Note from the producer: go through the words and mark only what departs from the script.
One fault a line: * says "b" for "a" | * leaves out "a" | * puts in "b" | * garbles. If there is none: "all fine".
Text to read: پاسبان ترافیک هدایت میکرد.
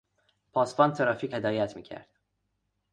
all fine